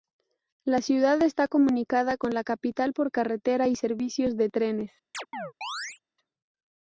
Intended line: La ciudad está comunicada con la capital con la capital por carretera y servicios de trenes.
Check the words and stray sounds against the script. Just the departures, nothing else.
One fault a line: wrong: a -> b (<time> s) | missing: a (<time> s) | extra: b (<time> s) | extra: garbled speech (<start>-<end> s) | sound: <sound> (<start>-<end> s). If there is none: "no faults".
missing: con la capital (2.9 s)
sound: chirp (5.1-6.0 s)